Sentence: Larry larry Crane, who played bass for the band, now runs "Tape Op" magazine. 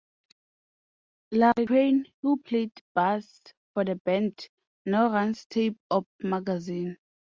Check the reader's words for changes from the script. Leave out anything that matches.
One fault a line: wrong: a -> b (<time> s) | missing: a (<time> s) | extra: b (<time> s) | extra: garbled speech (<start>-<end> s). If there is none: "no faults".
missing: larry (1.7 s)